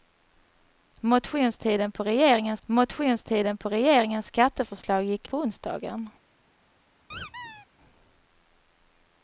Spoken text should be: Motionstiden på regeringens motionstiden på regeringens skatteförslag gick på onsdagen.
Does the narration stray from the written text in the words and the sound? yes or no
yes